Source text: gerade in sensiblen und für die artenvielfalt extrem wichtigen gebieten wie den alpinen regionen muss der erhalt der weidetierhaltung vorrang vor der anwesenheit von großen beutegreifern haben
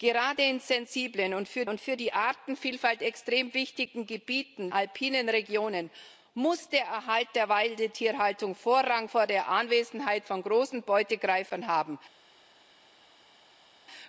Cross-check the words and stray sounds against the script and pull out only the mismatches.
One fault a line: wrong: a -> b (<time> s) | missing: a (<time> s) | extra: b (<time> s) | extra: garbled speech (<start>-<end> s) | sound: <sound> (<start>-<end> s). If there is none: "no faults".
extra: und für (1.7 s)
missing: wie den (4.7 s)